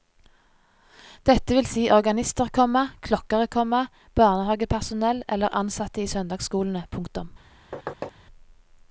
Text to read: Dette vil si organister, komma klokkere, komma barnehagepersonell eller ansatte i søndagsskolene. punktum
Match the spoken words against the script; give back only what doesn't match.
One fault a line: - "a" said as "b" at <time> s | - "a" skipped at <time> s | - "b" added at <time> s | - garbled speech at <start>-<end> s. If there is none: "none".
none